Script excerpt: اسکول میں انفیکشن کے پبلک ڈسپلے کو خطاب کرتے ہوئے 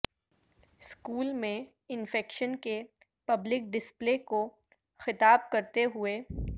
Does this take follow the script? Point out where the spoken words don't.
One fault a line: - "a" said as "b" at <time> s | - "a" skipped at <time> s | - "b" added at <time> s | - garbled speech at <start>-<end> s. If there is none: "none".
none